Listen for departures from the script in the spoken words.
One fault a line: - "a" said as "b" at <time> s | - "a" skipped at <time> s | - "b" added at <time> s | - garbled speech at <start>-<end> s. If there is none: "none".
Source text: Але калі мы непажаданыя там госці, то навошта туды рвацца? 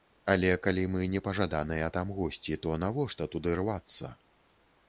none